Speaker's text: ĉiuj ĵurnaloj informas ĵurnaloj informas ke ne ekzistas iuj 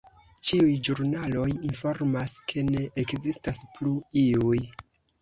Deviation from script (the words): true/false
true